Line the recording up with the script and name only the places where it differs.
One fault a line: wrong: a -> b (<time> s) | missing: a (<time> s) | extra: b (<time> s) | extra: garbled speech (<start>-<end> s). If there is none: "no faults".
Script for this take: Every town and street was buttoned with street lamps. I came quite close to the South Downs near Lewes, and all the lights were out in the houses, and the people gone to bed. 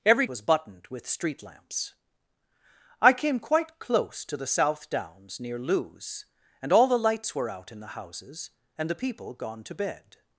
missing: town and street (0.2 s)